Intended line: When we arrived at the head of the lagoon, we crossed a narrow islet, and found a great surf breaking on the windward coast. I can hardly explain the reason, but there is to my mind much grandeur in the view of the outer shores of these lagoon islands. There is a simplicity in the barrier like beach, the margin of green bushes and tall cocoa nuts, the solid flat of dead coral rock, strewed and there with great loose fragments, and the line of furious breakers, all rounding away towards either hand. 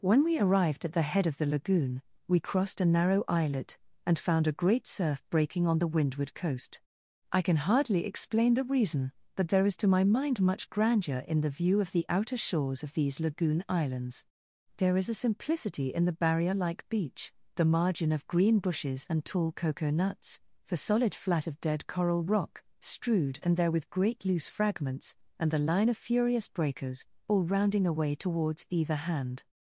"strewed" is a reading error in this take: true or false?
false